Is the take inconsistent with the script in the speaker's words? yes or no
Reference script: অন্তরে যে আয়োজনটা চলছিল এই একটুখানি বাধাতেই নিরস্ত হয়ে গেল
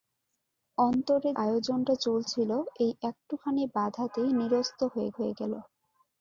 yes